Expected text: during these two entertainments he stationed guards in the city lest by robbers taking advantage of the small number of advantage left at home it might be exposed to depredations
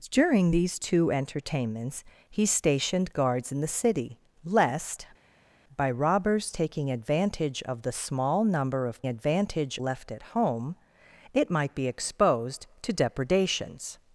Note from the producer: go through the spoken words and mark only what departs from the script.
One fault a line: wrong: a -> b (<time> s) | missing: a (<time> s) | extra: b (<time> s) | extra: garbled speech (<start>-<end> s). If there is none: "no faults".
no faults